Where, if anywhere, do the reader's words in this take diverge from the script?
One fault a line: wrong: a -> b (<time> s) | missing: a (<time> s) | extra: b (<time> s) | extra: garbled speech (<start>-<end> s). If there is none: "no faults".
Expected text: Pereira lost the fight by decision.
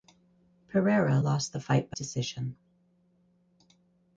no faults